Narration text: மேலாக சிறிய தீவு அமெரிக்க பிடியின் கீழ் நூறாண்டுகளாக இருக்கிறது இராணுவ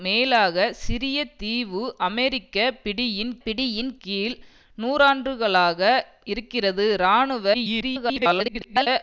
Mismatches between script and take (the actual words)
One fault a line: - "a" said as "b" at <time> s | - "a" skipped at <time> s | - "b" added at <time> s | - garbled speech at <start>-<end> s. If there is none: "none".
- "பிடியின்" added at 3.4 s
- garbled speech at 7.5-8.9 s